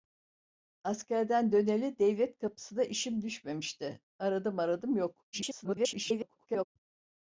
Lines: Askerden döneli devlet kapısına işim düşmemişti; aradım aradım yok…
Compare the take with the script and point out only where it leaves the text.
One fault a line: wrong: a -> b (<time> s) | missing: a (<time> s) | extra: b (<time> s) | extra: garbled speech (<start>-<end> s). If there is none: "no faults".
extra: garbled speech (5.3-6.6 s)